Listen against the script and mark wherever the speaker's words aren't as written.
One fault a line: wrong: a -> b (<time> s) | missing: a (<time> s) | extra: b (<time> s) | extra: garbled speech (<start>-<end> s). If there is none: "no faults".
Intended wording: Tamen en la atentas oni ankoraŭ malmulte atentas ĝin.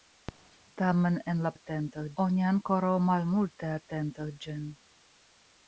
no faults